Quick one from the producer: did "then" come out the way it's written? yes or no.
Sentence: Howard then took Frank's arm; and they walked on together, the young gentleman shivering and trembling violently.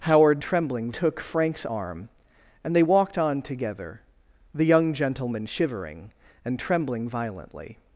no